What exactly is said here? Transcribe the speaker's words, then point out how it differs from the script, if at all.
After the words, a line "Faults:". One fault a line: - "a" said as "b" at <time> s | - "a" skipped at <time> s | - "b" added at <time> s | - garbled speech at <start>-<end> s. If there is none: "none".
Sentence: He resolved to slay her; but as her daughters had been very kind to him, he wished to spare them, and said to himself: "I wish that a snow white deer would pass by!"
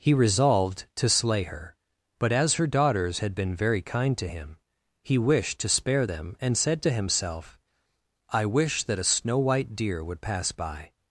He resolved to slay her; but as her daughters had been very kind to him, he wished to spare them, and said to himself: "I wish that a snow white deer would pass by!"
Faults:
none